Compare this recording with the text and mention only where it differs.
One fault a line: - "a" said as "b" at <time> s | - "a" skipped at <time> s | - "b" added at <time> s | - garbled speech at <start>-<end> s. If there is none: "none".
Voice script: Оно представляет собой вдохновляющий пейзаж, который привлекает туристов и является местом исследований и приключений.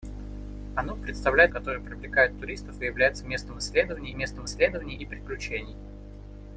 - "собой вдохновляющий пейзаж" skipped at 1.5 s
- "местом исследований" added at 4.2 s